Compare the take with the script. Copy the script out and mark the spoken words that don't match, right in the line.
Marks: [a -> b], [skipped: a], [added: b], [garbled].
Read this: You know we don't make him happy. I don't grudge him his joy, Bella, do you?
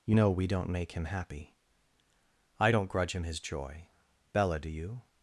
You know we don't make him happy. I don't grudge him his joy, Bella, do you?